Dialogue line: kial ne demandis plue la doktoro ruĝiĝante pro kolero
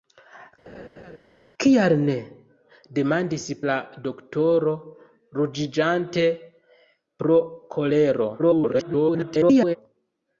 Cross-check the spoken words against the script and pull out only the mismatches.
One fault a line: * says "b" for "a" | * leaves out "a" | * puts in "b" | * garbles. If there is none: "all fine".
* leaves out "plue"
* garbles